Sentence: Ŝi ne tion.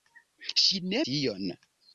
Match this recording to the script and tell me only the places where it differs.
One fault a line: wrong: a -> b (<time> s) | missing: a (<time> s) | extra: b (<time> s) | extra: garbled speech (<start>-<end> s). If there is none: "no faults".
no faults